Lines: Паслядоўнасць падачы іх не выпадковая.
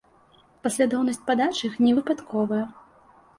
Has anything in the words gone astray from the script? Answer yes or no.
no